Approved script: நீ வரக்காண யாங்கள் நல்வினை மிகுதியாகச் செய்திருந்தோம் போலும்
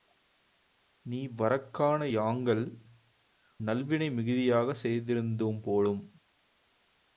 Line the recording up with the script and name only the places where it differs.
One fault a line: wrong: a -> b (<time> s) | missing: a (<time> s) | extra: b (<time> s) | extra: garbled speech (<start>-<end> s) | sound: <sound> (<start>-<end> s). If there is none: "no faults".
no faults